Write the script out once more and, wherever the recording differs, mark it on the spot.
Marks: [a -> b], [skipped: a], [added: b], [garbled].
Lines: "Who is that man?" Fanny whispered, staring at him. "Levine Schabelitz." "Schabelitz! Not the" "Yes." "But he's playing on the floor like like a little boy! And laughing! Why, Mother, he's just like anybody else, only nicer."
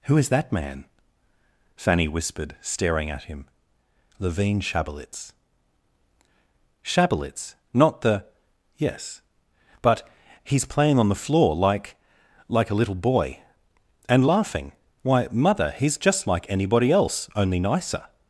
"Who is that man?" Fanny whispered, staring at him. "Levine Schabelitz." "Schabelitz! Not the" "Yes." "But he's playing on the floor like like a little boy! And laughing! Why, Mother, he's just like anybody else, only nicer."